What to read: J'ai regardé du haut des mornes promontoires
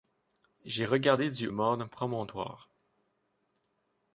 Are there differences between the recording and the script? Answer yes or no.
yes